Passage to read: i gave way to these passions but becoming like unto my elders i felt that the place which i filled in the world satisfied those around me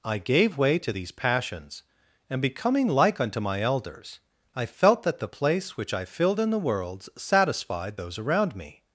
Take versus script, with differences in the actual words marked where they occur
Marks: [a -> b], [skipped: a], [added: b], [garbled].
i gave way to these passions [but -> and] becoming like unto my elders i felt that the place which i filled in the world satisfied those around me